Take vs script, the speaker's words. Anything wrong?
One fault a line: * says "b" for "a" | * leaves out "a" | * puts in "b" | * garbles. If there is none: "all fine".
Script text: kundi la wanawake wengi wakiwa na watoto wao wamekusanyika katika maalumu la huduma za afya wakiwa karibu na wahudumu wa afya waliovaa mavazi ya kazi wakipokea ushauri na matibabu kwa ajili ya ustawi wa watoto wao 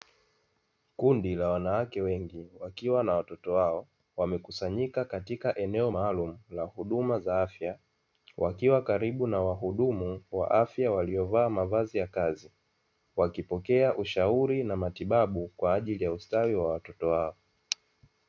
* puts in "eneo"